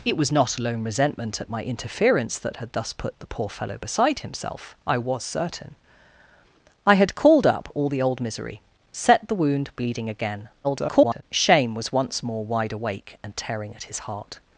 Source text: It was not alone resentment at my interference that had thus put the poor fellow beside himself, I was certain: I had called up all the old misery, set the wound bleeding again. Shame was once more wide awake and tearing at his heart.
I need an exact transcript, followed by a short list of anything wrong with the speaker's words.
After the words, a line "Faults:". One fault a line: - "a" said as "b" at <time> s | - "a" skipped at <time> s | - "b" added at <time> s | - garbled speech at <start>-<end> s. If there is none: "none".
It was not alone resentment at my interference that had thus put the poor fellow beside himself, I was certain: I had called up all the old misery, set the wound bleeding again. [garbled] Shame was once more wide awake and tearing at his heart.
Faults:
- garbled speech at 10.6-11.2 s